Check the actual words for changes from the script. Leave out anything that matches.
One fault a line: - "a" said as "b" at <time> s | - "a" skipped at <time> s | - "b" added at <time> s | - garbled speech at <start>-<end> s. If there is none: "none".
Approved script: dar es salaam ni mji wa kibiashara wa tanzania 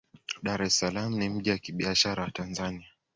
none